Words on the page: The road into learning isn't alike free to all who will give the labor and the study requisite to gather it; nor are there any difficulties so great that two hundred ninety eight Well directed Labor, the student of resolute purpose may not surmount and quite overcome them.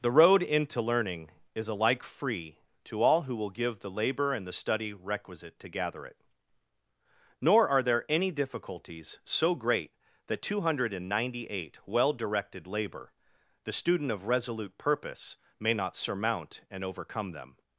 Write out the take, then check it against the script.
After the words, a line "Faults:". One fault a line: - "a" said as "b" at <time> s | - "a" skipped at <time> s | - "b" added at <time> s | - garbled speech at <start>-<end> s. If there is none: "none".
The road into learning is alike free to all who will give the labor and the study requisite to gather it; nor are there any difficulties so great that two hundred ninety eight Well directed Labor, the student of resolute purpose may not surmount and overcome them.
Faults:
- "isn't" said as "is" at 1.5 s
- "quite" skipped at 16.8 s